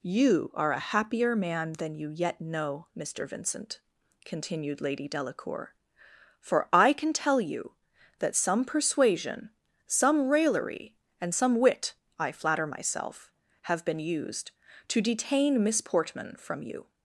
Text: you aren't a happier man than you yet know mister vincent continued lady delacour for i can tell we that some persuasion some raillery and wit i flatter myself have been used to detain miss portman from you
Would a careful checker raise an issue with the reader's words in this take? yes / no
yes